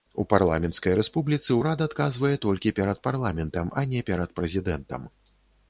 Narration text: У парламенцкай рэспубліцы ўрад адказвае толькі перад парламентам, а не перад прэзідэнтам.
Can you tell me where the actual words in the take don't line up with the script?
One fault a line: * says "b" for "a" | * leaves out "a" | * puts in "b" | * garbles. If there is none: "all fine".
all fine